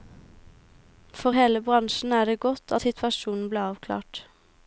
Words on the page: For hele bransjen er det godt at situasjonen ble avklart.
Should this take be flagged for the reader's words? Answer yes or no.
no